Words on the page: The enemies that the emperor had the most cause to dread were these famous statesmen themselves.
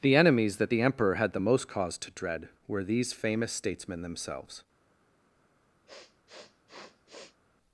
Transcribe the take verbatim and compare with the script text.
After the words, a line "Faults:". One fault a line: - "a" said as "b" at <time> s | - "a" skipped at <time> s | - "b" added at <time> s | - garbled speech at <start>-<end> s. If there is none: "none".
The enemies that the emperor had the most cause to dread were these famous statesmen themselves.
Faults:
none